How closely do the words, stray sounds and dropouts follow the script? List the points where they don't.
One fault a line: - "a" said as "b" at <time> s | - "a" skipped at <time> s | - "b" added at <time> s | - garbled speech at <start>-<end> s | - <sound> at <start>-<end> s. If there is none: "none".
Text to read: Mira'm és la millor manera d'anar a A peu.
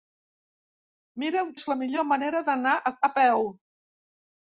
none